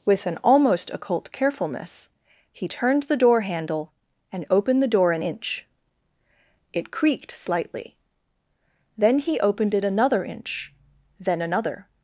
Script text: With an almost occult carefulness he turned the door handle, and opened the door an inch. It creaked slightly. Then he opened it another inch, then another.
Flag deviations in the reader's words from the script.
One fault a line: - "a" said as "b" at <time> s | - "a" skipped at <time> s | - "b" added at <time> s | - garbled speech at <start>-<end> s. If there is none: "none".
none